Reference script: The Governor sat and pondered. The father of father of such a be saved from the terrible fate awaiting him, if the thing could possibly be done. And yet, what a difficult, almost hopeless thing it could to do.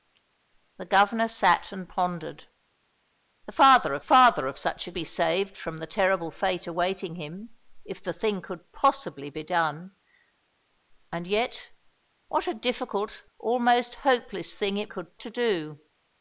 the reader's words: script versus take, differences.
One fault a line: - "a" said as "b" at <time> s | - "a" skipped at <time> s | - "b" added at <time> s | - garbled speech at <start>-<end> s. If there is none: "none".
none